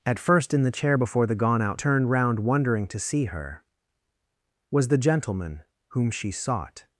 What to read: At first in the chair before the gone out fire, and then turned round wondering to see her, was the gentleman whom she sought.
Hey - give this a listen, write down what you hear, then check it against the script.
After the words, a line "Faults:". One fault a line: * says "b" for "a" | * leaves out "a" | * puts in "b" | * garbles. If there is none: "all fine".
At first in the chair before the gone out turned round wondering to see her, was the gentleman whom she sought.
Faults:
* leaves out "fire and then"